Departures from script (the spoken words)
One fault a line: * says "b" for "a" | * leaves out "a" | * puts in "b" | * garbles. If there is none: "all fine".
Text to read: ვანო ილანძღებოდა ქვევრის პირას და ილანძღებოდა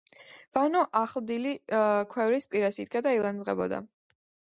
* says "ახლდილი" for "ილანძღებოდა"
* puts in "იდგა"